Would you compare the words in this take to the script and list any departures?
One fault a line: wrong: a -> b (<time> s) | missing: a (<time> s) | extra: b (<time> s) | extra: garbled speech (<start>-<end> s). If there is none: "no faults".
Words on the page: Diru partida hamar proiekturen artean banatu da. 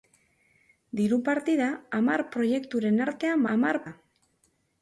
wrong: banatu -> hamar (3.5 s)